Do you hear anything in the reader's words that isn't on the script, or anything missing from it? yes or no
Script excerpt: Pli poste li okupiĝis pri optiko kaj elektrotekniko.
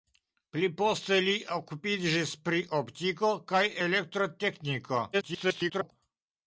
yes